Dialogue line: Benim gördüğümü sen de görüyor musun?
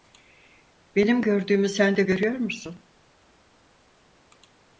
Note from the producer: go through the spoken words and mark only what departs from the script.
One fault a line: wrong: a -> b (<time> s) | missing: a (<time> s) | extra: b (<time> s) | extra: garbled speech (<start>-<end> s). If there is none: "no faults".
no faults